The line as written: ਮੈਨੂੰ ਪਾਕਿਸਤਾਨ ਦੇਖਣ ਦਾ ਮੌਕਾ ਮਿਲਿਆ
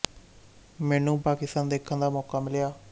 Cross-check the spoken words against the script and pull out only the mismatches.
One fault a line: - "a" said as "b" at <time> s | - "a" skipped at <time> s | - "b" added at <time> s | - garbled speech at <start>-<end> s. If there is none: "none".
none